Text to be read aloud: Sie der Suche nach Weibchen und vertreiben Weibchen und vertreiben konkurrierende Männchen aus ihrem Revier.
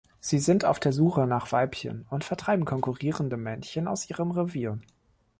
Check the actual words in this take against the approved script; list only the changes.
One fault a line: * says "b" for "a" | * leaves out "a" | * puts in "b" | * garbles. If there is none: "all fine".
* puts in "sind auf"
* leaves out "Weibchen und vertreiben"